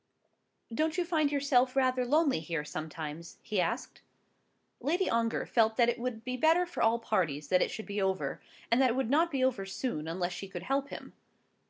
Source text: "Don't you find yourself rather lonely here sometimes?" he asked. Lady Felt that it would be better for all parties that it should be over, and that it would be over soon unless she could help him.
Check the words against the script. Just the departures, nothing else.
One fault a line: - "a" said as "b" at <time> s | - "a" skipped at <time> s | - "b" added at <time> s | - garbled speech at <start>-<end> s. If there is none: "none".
- "Ongar" added at 5.1 s
- "not" added at 9.1 s